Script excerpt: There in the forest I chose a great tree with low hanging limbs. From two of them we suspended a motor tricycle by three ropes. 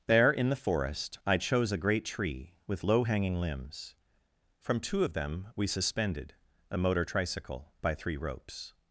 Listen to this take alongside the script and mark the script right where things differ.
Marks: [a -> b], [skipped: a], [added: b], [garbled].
There in the forest I chose a great tree with low hanging limbs. From two of them we suspended a motor tricycle by three ropes.